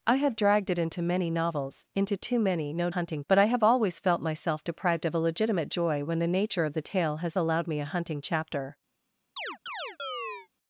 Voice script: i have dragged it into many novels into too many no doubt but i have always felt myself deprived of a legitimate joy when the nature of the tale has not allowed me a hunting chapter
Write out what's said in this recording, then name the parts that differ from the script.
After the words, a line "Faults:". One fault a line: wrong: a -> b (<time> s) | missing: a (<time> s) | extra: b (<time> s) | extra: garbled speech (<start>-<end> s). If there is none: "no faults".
i have dragged it into many novels into too many no hunting but i have always felt myself deprived of a legitimate joy when the nature of the tale has allowed me a hunting chapter
Faults:
wrong: doubt -> hunting (2.9 s)
missing: not (7.4 s)